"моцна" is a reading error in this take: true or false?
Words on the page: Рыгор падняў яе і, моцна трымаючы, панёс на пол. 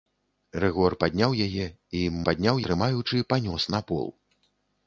true